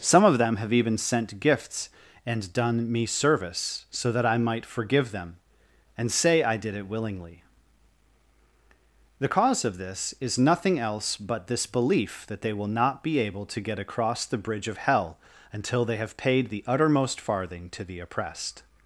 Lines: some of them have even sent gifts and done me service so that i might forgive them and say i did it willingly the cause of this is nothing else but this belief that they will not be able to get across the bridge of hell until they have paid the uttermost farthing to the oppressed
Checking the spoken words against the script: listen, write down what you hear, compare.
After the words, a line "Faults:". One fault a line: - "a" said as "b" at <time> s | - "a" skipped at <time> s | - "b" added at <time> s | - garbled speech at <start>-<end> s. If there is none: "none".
some of them have even sent gifts and done me service so that i might forgive them and say i did it willingly the cause of this is nothing else but this belief that they will not be able to get across the bridge of hell until they have paid the uttermost farthing to the oppressed
Faults:
none